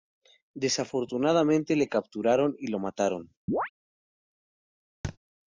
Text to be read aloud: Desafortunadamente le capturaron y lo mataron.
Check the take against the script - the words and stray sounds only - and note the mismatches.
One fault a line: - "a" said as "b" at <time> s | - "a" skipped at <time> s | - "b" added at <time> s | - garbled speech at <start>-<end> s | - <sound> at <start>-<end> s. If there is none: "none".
- chirp at 3.5-3.7 s
- thud at 5.0-5.2 s